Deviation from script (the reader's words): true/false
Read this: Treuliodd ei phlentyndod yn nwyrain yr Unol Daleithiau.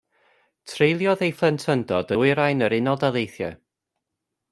true